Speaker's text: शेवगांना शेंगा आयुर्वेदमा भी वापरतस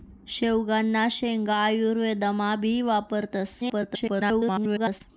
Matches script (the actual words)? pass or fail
fail